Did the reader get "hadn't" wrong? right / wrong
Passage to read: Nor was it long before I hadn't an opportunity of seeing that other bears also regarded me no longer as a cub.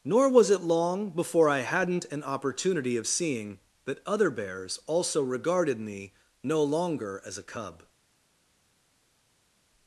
right